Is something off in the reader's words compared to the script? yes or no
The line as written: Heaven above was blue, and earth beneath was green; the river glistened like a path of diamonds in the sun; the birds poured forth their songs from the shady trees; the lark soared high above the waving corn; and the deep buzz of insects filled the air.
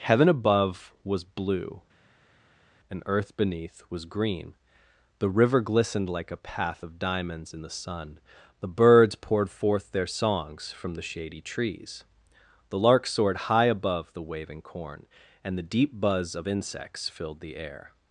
no